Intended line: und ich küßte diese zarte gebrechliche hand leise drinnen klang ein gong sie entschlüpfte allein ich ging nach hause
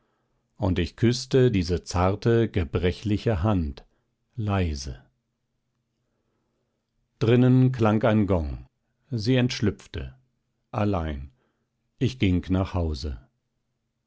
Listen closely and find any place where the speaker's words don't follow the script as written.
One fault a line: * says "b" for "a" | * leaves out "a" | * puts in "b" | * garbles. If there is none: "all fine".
all fine